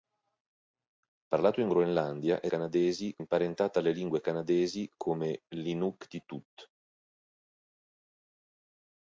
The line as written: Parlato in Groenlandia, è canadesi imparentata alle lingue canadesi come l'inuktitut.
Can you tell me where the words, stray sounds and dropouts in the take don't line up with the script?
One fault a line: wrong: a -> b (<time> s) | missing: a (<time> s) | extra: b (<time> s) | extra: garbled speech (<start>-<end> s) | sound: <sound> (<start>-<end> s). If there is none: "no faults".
no faults